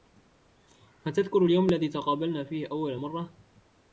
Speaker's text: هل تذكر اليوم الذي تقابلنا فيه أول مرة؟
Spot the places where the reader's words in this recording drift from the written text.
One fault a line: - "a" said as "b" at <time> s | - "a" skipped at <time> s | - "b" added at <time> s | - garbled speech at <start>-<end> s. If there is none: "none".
none